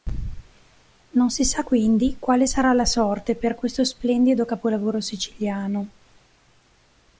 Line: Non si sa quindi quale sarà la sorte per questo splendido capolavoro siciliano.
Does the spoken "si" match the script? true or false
true